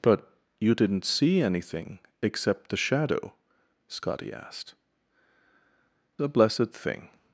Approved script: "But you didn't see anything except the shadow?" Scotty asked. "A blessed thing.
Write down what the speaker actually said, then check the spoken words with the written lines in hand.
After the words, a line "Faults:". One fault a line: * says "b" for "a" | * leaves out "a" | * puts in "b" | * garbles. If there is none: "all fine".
"But you didn't see anything except the shadow?" Scotty asked. "A blessed thing.
Faults:
all fine